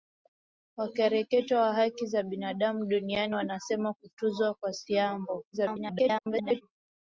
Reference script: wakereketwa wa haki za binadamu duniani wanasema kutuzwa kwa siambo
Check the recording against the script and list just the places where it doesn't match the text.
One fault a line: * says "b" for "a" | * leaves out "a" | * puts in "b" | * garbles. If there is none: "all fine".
* garbles